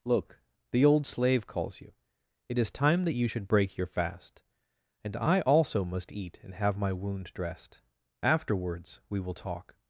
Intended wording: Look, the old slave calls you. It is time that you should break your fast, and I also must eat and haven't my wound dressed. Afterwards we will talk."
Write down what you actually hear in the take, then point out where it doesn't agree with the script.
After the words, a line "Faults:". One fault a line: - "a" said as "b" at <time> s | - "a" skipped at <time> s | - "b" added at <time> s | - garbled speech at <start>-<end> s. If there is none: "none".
Look, the old slave calls you. It is time that you should break your fast, and I also must eat and have my wound dressed. Afterwards we will talk."
Faults:
- "haven't" said as "have" at 6.5 s